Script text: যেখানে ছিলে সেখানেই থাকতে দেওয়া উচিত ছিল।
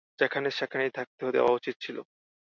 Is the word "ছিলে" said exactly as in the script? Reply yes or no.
no